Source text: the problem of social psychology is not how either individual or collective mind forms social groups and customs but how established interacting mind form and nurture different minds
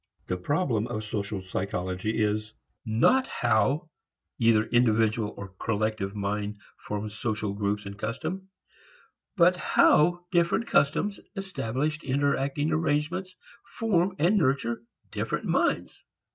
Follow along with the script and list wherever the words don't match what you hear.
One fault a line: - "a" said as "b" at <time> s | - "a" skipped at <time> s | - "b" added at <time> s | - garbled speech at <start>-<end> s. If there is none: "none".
- "different customs" added at 10.3 s
- "mind" said as "arrangements" at 12.7 s